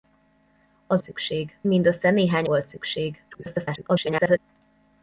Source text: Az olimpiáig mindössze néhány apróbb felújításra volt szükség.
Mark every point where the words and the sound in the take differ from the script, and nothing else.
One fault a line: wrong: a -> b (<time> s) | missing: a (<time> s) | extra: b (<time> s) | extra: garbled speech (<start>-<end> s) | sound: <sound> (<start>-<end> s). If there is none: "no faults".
wrong: olimpiáig -> szükség (1.0 s)
missing: apróbb felújításra (2.5 s)
extra: garbled speech (3.3-4.4 s)